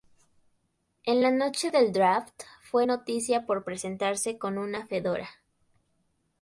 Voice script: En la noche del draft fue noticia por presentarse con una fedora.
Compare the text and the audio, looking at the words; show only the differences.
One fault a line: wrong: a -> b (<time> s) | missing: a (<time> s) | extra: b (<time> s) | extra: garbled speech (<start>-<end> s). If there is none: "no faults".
no faults